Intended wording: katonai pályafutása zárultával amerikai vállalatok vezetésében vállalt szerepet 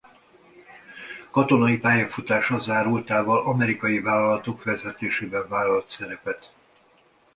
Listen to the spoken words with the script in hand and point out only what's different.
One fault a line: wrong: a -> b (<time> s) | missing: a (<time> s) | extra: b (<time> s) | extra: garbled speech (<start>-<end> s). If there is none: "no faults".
no faults